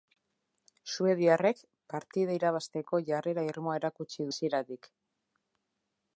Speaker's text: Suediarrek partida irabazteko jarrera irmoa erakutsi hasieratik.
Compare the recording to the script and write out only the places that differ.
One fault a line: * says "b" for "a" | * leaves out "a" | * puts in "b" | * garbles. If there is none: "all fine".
all fine